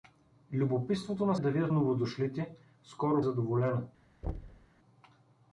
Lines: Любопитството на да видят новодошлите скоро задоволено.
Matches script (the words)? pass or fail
pass